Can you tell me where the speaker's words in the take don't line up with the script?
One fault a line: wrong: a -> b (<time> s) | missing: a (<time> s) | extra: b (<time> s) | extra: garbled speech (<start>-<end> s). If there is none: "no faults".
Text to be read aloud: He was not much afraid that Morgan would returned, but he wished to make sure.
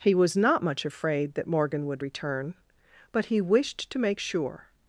wrong: returned -> return (2.0 s)